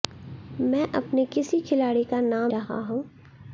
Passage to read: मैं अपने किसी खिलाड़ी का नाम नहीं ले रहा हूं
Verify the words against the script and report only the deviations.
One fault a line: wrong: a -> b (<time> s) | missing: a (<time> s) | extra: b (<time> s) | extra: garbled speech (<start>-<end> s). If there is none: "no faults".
missing: नहीं ले (2.5 s)